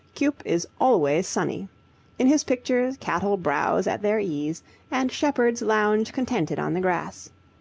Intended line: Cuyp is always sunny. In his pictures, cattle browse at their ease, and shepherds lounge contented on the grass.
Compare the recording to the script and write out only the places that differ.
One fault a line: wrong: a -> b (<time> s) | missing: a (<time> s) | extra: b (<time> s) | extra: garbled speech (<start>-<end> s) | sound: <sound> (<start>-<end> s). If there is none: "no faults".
no faults